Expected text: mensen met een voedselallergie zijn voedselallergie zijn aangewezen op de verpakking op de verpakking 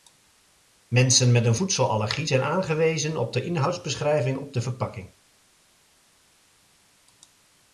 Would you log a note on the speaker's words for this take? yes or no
yes